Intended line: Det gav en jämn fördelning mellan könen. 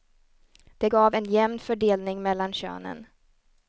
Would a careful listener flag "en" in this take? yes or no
no